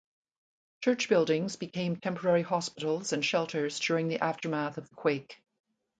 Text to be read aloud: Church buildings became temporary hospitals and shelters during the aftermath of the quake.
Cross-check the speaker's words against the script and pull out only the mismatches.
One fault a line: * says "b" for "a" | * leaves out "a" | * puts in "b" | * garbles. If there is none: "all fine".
all fine